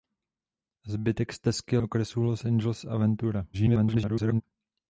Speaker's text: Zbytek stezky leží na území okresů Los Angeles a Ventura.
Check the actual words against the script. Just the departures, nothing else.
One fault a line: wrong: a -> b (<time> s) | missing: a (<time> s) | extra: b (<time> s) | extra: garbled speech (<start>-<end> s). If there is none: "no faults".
missing: leží na území (1.8 s)
extra: garbled speech (3.5-4.4 s)